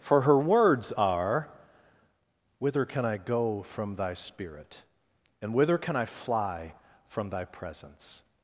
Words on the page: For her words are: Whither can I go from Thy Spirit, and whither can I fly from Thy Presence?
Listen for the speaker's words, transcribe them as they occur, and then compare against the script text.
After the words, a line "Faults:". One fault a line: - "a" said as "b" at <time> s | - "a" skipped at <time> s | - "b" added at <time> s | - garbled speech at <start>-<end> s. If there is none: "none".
For her words are: Whither can I go from Thy Spirit, and whither can I fly from Thy Presence?
Faults:
none